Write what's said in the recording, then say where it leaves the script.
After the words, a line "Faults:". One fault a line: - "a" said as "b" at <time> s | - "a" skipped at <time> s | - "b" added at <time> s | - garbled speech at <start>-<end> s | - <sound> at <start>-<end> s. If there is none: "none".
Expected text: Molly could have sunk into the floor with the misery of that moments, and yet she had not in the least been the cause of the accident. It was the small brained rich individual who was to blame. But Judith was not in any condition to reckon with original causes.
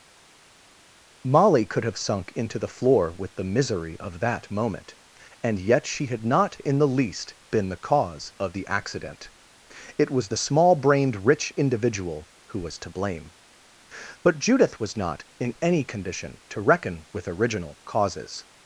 Molly could have sunk into the floor with the misery of that moment, and yet she had not in the least been the cause of the accident. It was the small brained rich individual who was to blame. But Judith was not in any condition to reckon with original causes.
Faults:
- "moments" said as "moment" at 4.5 s